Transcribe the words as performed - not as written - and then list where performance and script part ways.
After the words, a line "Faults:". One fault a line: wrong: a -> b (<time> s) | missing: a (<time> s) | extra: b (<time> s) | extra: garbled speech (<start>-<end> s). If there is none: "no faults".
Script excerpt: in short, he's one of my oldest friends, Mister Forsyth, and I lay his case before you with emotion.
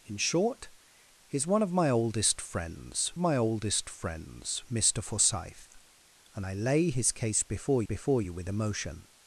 in short, he's one of my oldest friends my oldest friends, Mister Forsyth, and I lay his case before before you with emotion.
Faults:
extra: my oldest friends (3.2 s)
extra: before (7.8 s)